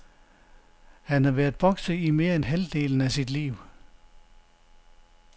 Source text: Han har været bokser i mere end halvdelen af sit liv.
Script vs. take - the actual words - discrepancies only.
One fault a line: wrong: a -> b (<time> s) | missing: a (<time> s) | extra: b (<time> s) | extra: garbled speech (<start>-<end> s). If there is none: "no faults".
no faults